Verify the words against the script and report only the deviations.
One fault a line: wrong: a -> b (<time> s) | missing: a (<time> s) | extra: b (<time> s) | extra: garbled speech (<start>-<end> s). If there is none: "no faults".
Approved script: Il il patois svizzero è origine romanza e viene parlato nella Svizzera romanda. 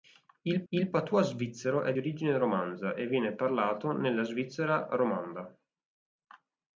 no faults